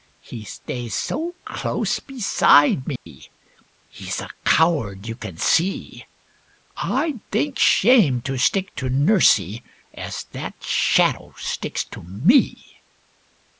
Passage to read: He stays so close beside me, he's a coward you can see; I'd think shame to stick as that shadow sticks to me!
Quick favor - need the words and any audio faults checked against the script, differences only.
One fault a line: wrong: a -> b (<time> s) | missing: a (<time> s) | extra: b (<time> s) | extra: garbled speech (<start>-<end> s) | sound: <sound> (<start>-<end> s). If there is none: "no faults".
sound: dropout (3.0-3.1 s)
extra: to nursie (8.8 s)